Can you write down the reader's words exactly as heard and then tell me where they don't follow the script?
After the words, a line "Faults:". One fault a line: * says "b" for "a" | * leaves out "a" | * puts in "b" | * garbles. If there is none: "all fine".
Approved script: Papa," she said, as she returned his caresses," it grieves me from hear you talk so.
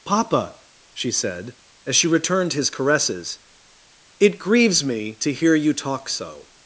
Papa," she said, as she returned his caresses," it grieves me to hear you talk so.
Faults:
* says "to" for "from"